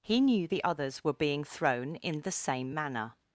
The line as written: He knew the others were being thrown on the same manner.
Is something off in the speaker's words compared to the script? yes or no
yes